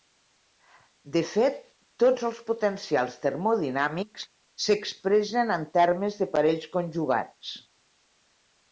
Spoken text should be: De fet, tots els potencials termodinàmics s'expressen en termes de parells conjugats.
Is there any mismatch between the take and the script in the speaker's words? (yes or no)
no